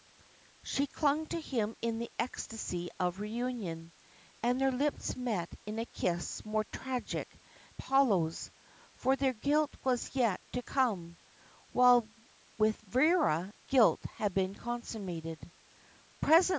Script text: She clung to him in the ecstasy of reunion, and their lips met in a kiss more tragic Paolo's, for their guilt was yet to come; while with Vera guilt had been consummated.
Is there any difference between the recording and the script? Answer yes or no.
no